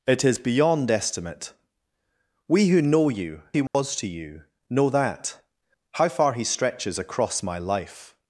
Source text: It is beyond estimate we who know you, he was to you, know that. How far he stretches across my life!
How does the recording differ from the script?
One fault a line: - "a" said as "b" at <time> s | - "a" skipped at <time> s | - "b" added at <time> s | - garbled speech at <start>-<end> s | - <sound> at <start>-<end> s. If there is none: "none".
- dropout at 3.7-3.7 s